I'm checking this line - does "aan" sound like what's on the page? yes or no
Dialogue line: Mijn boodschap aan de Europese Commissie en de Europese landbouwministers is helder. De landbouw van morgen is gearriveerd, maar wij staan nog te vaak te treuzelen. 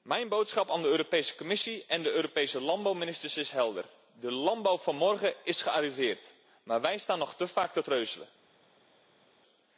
yes